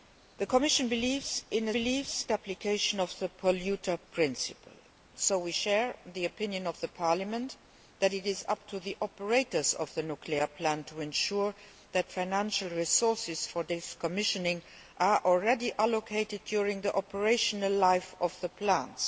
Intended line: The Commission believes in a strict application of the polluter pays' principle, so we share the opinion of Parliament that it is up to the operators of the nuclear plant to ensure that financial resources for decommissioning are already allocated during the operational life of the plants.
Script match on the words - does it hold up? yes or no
no